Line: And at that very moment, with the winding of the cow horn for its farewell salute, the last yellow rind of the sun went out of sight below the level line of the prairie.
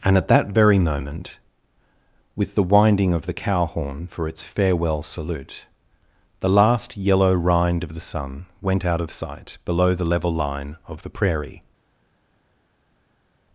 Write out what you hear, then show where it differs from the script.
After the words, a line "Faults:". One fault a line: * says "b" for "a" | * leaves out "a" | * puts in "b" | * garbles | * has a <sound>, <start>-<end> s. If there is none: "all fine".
And at that very moment, with the winding of the cow horn for its farewell salute, the last yellow rind of the sun went out of sight below the level line of the prairie.
Faults:
all fine